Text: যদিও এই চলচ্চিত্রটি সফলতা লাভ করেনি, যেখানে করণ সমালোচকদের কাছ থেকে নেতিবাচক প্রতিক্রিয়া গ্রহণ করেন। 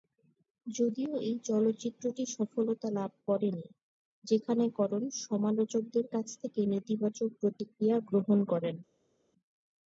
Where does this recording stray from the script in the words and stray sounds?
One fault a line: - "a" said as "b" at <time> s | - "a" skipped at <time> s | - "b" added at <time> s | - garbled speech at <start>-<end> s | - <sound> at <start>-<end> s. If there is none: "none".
none